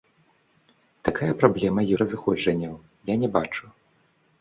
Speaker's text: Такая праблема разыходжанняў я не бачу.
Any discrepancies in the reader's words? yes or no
no